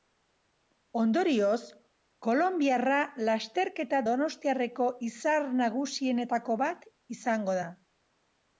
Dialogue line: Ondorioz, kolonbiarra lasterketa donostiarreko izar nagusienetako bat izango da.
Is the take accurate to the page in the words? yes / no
yes